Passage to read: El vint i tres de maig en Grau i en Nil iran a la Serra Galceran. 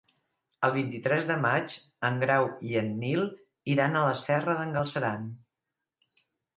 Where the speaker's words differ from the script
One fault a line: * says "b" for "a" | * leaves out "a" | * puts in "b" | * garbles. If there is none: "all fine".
* puts in "d'en"